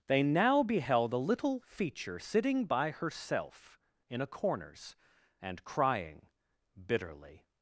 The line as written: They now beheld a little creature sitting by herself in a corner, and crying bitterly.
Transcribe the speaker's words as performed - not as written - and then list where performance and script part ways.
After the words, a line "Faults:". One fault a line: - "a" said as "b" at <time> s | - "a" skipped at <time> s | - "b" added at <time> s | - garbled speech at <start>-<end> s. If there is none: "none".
They now beheld a little feature sitting by herself in a corners, and crying bitterly.
Faults:
- "creature" said as "feature" at 1.6 s
- "corner" said as "corners" at 4.3 s